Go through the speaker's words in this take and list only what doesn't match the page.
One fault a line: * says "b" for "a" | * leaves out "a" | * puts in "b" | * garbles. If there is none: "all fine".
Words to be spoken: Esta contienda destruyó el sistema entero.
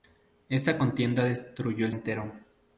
* leaves out "sistema"